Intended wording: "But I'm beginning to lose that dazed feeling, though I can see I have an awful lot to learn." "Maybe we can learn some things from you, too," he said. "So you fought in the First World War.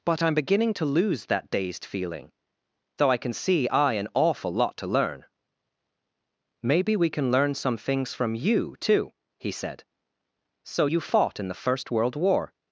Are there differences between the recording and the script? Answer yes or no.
yes